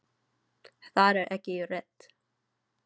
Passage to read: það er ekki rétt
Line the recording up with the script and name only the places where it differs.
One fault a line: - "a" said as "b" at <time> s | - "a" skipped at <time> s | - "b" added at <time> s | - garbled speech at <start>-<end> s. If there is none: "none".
none